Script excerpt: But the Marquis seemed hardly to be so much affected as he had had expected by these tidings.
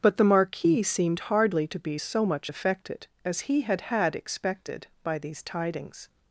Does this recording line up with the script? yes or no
yes